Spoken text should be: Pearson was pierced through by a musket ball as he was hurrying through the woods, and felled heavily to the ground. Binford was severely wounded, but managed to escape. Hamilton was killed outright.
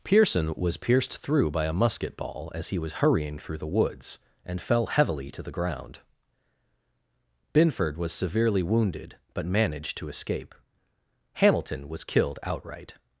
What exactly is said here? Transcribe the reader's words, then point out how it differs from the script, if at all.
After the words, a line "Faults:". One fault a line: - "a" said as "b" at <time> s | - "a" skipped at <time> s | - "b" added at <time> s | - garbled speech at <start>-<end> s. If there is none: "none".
Pearson was pierced through by a musket ball as he was hurrying through the woods, and fell heavily to the ground. Binford was severely wounded, but managed to escape. Hamilton was killed outright.
Faults:
- "felled" said as "fell" at 4.6 s